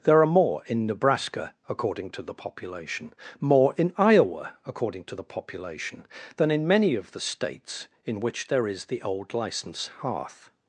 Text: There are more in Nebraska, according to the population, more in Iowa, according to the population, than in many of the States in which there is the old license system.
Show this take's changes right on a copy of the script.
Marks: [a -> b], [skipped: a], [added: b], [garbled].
There are more in Nebraska, according to the population, more in Iowa, according to the population, than in many of the States in which there is the old license [system. -> hearth]